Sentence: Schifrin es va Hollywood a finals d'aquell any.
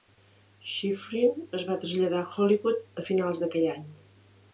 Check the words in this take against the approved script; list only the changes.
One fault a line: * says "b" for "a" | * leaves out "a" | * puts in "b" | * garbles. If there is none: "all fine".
* puts in "traslladar a"